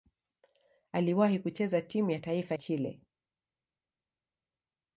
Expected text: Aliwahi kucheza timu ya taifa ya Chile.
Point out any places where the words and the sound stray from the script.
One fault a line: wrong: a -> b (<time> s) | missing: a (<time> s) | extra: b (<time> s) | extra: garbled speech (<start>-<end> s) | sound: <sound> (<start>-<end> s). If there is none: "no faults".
missing: ya (2.5 s)